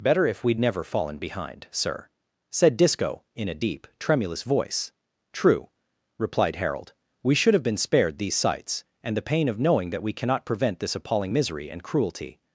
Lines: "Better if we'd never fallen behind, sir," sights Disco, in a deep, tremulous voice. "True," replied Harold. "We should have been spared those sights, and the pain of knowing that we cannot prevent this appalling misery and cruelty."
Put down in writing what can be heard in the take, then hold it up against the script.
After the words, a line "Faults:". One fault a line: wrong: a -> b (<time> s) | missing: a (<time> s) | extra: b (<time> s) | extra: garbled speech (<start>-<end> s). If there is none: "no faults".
"Better if we'd never fallen behind, sir," said Disco, in a deep, tremulous voice. "True," replied Harold. "We should have been spared these sights, and the pain of knowing that we cannot prevent this appalling misery and cruelty."
Faults:
wrong: sights -> said (2.5 s)
wrong: those -> these (8.2 s)